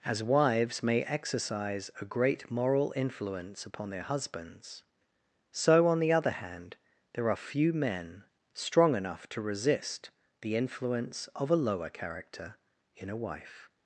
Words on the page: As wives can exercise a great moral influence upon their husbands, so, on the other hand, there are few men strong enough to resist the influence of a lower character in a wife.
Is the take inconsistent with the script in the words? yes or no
yes